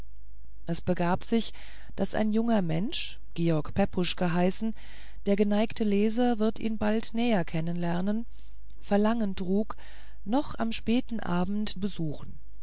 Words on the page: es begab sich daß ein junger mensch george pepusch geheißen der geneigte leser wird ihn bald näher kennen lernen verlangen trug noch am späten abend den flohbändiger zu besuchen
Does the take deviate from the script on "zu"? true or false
true